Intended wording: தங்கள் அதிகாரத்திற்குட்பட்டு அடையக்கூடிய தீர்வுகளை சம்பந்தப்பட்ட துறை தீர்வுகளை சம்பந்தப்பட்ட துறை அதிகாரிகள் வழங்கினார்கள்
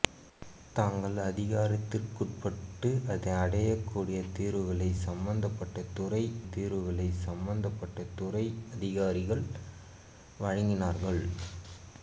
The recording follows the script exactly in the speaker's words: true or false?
true